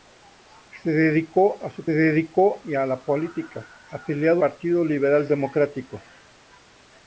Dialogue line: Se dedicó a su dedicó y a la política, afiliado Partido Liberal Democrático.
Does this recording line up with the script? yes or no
yes